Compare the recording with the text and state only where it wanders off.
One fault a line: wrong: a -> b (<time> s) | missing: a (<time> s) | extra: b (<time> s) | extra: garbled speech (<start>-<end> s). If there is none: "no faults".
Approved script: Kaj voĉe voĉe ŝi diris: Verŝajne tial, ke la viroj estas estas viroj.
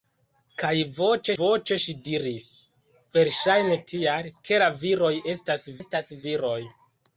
no faults